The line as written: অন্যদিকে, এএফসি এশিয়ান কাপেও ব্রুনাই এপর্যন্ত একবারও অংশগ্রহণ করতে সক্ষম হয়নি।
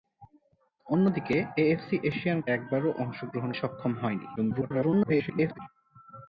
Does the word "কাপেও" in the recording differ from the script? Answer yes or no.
yes